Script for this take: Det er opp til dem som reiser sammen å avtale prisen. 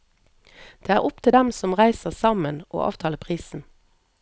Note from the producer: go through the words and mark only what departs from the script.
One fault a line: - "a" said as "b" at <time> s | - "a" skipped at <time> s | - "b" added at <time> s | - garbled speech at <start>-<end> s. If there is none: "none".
none